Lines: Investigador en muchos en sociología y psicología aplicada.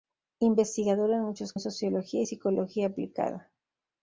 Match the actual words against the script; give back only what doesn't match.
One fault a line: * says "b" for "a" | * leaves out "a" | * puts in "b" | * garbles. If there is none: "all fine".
all fine